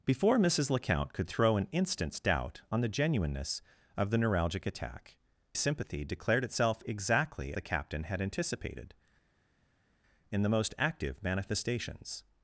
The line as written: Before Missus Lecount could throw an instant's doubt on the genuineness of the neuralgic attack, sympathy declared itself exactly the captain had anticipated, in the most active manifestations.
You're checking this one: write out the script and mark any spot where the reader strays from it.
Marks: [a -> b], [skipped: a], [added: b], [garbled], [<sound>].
Before Missus Lecount could throw an instant's doubt on the genuineness of the neuralgic attack, sympathy declared itself exactly the captain had anticipated, in the most active manifestations.